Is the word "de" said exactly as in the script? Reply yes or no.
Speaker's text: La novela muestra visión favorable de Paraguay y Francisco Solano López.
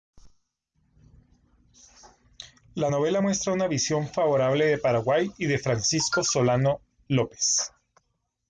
yes